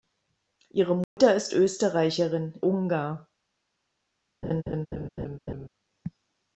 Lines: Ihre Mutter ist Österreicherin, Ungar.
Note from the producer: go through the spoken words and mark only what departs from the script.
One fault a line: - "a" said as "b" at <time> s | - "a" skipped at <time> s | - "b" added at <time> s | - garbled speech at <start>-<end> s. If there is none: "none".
none